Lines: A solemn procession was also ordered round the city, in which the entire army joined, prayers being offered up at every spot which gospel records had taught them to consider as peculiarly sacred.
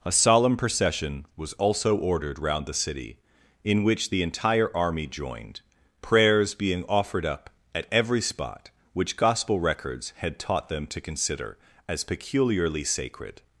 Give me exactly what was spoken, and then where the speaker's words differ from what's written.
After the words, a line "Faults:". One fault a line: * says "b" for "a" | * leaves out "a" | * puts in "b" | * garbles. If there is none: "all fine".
A solemn procession was also ordered round the city, in which the entire army joined, prayers being offered up at every spot which gospel records had taught them to consider as peculiarly sacred.
Faults:
all fine